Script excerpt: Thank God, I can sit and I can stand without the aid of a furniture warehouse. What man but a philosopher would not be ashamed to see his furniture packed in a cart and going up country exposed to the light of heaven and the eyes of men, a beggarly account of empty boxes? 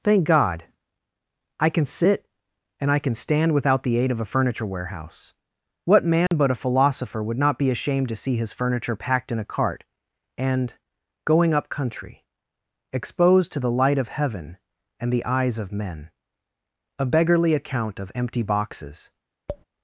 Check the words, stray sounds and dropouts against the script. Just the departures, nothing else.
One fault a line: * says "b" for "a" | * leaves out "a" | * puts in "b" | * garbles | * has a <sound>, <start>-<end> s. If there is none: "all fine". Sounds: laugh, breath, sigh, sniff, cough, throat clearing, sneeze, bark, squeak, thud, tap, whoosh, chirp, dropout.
* has a dropout, 6.3-6.3 s
* has a tap, 19.5-19.6 s